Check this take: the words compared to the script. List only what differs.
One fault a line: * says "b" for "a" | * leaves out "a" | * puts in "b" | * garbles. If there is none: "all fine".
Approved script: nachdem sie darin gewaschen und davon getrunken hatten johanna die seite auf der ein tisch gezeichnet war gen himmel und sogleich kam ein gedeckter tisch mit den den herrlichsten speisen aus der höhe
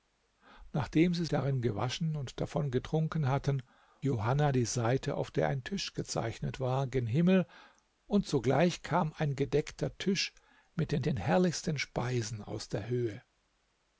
all fine